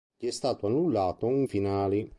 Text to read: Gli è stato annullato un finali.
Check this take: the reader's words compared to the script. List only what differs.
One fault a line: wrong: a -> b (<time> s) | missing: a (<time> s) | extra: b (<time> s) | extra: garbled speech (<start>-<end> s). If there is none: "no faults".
no faults